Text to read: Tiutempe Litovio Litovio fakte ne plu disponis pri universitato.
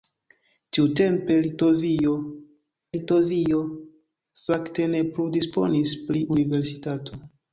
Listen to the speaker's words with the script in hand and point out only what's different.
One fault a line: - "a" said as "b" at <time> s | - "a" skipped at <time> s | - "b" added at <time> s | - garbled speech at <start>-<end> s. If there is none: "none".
none